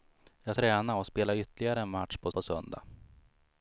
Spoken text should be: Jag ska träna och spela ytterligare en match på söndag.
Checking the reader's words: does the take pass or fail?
fail